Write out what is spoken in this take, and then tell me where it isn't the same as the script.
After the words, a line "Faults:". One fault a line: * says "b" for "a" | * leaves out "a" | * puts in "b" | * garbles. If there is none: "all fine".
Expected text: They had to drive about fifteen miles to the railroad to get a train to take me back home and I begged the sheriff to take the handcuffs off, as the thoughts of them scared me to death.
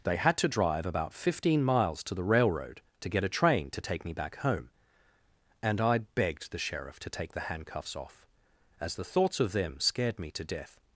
They had to drive about fifteen miles to the railroad to get a train to take me back home and I begged the sheriff to take the handcuffs off, as the thoughts of them scared me to death.
Faults:
all fine